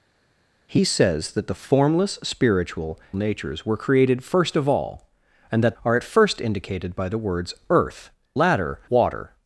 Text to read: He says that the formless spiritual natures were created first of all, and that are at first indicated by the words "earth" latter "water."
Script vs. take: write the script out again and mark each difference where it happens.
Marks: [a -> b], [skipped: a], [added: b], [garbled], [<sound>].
He says that the formless spiritual natures were created first of all, and that are at first indicated by the words "earth" latter "water."